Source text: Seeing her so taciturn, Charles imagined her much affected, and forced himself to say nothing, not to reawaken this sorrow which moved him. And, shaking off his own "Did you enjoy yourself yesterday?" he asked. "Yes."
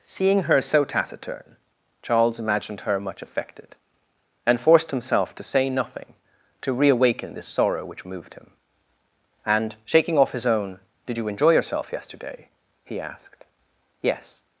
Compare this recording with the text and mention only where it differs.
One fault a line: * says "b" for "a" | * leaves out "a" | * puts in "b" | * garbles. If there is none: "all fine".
* leaves out "not"